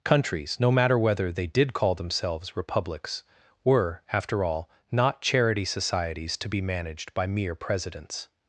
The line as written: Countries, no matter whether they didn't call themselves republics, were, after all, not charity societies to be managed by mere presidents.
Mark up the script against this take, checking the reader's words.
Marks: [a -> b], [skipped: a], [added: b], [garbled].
Countries, no matter whether they [didn't -> did] call themselves republics, were, after all, not charity societies to be managed by mere presidents.